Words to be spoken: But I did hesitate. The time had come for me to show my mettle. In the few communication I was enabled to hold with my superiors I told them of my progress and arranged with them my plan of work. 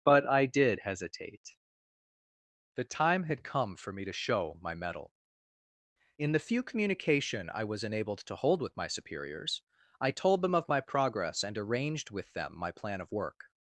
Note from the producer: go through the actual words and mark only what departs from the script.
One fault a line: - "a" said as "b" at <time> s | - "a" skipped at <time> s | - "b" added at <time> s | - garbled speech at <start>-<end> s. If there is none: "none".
none